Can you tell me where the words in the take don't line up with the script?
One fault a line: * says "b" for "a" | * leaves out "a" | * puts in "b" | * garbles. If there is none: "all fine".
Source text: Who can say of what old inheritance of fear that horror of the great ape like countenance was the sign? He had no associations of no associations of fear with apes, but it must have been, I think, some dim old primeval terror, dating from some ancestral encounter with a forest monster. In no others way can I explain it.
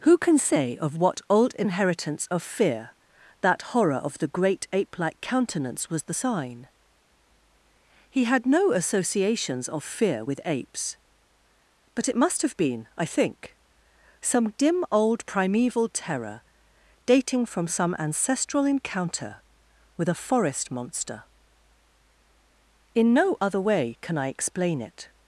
* leaves out "no associations of"
* says "other" for "others"